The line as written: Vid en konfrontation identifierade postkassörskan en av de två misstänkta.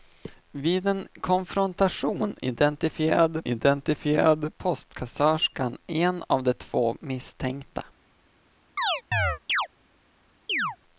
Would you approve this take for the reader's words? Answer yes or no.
no